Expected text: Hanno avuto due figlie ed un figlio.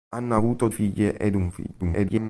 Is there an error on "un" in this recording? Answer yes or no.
no